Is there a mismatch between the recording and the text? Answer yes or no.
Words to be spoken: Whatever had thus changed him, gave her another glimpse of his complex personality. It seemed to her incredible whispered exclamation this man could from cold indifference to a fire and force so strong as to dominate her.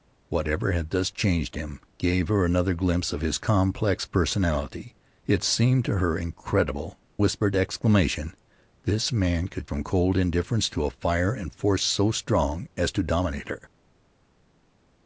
no